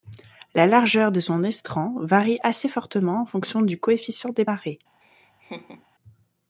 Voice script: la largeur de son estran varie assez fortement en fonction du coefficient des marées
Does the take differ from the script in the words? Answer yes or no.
no